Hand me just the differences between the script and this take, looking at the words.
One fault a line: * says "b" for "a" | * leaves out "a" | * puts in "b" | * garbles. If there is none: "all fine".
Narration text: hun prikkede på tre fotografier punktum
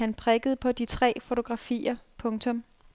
* says "han" for "hun"
* puts in "de"